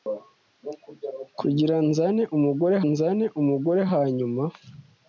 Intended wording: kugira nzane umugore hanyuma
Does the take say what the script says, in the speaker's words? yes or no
no